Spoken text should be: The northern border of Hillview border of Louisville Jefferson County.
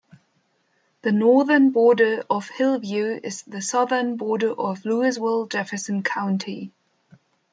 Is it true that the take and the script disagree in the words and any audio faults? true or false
true